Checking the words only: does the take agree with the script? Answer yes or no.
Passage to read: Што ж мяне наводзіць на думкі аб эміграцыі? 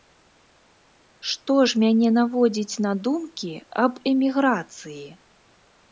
yes